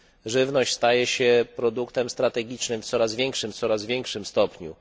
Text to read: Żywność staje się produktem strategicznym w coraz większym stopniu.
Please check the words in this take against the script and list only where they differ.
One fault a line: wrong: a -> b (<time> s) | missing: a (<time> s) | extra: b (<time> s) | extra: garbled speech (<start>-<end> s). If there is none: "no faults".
extra: coraz większym (3.5 s)